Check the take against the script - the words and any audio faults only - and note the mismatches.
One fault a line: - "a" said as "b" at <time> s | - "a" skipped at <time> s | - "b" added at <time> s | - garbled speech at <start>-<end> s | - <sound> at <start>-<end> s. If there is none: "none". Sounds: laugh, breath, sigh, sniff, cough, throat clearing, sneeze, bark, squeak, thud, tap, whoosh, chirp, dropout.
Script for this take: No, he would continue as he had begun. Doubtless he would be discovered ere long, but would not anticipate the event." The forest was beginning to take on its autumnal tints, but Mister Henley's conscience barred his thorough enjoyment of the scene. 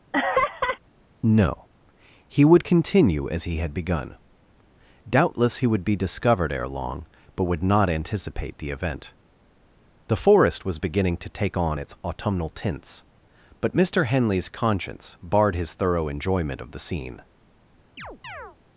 - laugh at 0.1-0.8 s
- chirp at 18.0-18.6 s